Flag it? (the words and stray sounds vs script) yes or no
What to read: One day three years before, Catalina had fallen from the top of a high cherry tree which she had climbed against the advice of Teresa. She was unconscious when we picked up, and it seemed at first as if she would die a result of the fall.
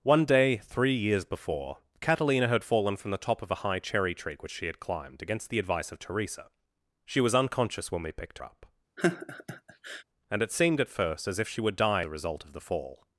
yes